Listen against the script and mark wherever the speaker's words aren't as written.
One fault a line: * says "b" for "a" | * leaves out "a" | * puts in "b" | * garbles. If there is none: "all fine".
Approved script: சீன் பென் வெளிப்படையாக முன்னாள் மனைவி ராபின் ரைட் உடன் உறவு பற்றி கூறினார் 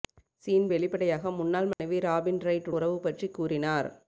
* leaves out "பென்"
* leaves out "உடன்"